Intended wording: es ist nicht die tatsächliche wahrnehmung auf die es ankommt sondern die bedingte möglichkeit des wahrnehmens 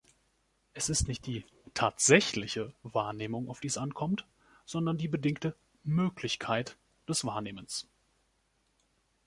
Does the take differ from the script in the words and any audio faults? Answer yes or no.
no